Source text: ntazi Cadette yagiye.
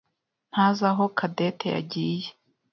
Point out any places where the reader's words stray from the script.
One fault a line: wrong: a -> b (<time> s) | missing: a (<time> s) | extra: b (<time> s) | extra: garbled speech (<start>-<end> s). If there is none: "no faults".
extra: aho (0.9 s)